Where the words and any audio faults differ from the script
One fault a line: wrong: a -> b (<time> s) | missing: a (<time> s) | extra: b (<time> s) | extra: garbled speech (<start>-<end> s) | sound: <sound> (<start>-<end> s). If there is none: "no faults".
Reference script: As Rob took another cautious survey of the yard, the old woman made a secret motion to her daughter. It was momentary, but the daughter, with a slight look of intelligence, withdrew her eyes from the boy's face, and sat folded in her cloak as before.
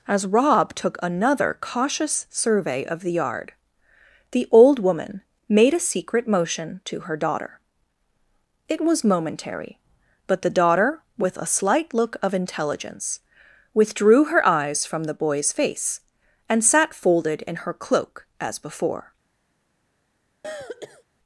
sound: throat clearing (20.4-21.0 s)